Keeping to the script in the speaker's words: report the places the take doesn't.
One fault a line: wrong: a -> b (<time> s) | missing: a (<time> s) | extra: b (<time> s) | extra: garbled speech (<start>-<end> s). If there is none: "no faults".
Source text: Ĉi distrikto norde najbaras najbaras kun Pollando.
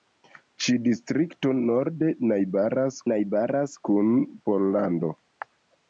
no faults